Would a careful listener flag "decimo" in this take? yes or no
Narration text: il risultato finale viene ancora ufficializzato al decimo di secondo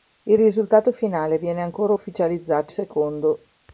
yes